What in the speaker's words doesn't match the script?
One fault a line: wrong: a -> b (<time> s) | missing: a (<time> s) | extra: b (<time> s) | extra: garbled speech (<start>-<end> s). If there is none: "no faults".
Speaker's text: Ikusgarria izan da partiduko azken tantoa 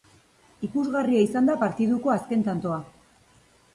no faults